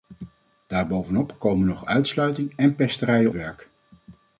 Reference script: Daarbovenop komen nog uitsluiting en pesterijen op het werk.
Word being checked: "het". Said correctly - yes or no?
no